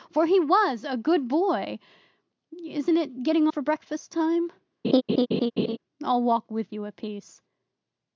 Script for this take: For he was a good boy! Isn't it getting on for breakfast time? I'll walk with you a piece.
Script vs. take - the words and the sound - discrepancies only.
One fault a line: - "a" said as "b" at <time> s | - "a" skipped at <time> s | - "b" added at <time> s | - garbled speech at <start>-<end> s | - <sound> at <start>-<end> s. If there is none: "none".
- "on" skipped at 3.5 s
- laugh at 4.8-5.8 s